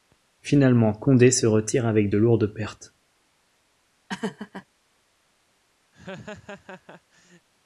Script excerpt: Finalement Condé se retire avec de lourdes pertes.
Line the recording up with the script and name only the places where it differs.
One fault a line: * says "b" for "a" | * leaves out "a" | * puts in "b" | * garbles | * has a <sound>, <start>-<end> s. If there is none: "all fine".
* has a laugh, 4.1-4.7 s
* has a laugh, 5.9-7.5 s